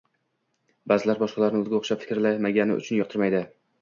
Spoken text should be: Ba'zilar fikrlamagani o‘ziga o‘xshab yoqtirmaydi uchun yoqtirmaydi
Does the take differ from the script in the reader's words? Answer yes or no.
yes